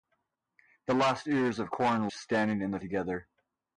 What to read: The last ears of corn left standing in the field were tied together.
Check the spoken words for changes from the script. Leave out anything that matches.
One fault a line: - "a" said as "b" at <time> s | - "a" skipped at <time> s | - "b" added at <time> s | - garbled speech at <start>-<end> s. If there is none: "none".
- "left" skipped at 2.1 s
- "field were tied" skipped at 2.8 s